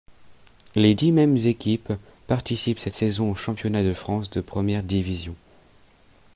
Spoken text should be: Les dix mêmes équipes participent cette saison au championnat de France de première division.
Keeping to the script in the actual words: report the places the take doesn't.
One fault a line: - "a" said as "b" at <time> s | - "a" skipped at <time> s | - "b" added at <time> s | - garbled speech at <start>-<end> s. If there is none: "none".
none